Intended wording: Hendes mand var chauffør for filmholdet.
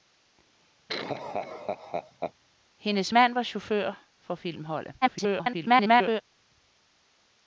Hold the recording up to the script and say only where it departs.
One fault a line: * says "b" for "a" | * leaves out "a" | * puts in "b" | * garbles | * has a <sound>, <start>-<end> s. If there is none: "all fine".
* has a laugh, 0.9-2.3 s
* garbles